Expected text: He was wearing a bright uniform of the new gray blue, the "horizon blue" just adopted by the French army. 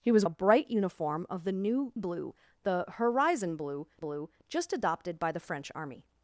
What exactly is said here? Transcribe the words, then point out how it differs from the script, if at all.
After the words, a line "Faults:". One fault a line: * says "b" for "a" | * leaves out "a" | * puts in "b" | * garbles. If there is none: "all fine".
He was a bright uniform of the new blue, the "horizon blue blue" just adopted by the French army.
Faults:
* leaves out "wearing"
* leaves out "gray"
* puts in "blue"